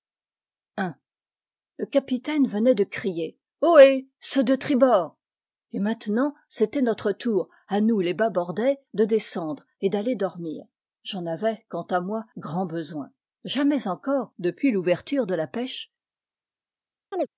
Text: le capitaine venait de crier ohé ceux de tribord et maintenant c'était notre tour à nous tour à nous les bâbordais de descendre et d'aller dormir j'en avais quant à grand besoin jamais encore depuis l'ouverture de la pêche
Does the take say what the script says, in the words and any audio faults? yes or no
no